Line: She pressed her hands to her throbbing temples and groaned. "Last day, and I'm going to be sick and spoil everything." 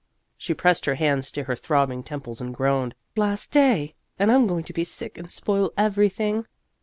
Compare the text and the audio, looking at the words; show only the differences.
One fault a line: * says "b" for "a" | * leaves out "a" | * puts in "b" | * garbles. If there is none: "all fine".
all fine